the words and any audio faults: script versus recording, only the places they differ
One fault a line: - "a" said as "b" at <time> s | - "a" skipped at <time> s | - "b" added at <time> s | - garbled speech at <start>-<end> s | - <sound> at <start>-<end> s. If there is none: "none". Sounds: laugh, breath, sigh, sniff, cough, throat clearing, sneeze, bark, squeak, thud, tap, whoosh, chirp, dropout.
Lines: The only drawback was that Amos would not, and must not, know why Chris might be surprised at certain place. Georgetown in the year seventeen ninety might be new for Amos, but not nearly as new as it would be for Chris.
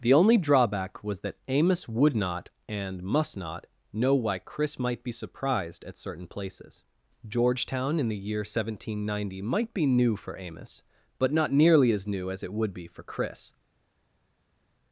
- "place" said as "places" at 6.2 s